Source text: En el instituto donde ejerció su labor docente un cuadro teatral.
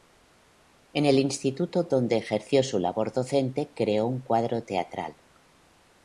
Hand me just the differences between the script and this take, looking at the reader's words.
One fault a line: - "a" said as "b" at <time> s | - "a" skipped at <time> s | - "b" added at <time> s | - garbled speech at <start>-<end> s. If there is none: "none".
- "creó" added at 3.8 s